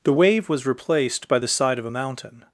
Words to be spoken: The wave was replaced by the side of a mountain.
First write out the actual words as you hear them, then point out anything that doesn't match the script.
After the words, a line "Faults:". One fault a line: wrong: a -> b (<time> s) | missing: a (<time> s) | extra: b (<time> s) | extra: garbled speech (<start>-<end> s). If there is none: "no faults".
The wave was replaced by the side of a mountain.
Faults:
no faults